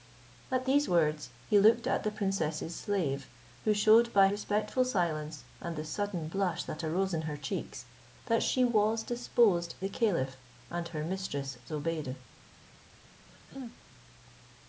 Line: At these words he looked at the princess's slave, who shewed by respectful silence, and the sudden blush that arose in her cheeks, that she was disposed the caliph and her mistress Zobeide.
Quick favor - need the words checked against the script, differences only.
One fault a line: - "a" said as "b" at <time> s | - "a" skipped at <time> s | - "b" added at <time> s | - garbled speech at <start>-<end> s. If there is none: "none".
none